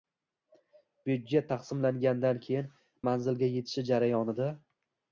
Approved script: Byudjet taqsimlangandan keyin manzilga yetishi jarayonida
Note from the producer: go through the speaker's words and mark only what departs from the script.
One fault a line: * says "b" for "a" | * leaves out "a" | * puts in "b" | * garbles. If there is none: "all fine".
all fine